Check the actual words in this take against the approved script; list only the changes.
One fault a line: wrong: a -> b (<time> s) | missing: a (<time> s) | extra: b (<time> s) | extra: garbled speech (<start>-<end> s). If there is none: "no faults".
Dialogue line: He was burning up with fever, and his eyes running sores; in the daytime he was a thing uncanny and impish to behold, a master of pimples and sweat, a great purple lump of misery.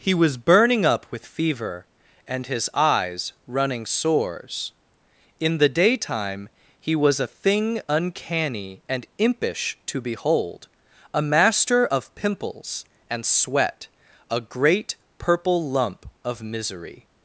no faults